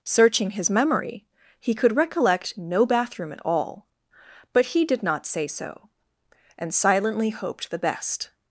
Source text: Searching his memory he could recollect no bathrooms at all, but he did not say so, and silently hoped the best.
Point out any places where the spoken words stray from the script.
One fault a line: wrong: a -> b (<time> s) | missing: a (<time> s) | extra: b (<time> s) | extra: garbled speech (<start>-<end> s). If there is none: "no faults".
wrong: bathrooms -> bathroom (2.9 s)